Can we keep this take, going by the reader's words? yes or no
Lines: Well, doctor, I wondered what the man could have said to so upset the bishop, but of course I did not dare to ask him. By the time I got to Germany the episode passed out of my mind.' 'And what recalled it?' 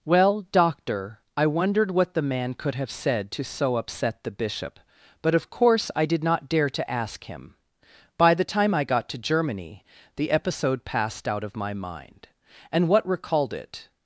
yes